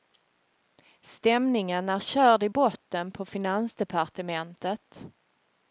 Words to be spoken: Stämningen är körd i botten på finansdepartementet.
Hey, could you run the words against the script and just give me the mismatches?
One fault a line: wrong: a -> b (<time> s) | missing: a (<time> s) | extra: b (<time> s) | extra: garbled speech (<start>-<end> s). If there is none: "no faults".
no faults